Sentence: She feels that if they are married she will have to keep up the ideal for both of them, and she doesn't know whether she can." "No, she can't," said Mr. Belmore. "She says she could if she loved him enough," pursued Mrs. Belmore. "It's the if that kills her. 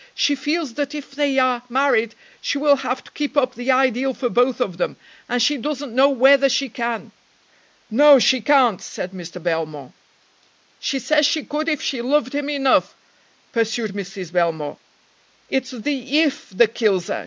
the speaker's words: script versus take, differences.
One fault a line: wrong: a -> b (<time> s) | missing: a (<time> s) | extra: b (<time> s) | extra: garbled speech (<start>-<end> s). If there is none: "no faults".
no faults